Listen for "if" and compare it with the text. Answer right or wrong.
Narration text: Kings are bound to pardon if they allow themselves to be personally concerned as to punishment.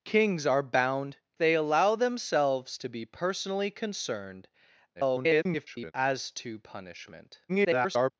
wrong